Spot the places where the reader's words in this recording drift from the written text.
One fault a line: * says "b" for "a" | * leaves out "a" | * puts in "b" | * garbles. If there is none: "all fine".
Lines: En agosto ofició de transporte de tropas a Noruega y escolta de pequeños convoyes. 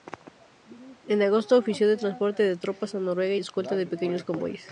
all fine